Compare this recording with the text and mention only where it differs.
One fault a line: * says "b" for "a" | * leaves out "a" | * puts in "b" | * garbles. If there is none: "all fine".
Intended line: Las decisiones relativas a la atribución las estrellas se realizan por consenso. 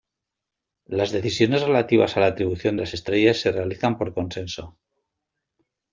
all fine